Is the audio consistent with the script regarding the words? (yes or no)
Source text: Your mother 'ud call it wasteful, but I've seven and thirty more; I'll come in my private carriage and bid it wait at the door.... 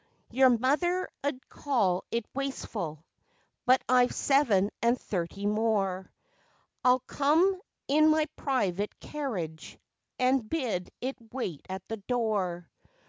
yes